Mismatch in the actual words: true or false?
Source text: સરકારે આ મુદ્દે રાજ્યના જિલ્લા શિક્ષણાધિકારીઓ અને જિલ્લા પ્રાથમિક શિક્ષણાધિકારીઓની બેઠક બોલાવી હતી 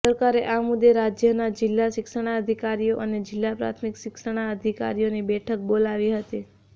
false